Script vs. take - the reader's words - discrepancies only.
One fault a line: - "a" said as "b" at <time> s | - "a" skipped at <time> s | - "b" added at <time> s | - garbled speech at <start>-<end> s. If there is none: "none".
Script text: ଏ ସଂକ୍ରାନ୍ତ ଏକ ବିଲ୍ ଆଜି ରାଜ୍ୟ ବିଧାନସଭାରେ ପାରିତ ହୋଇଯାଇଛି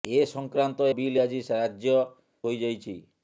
- "ଏକ" skipped at 0.9 s
- "ବିଧାନସଭାରେ ପାରିତ" skipped at 2.0 s